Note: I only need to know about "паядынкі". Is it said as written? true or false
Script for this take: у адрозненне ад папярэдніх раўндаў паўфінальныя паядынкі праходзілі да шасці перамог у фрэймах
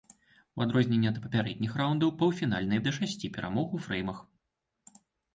false